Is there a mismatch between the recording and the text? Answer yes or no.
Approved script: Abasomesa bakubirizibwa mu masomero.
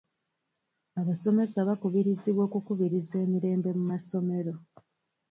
yes